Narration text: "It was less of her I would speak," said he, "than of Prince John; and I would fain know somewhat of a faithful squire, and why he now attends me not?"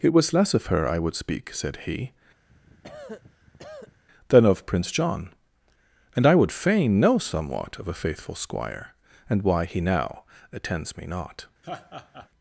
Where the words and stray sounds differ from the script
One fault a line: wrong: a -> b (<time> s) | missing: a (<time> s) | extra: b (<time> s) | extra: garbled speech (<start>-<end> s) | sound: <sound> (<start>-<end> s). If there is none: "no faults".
sound: cough (2.5-4.0 s)
sound: laugh (11.6-12.3 s)